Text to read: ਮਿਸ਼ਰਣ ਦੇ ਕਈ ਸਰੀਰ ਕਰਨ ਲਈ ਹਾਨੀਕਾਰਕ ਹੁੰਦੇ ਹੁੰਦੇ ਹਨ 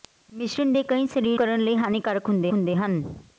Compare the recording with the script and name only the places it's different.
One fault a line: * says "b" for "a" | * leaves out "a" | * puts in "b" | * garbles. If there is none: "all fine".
all fine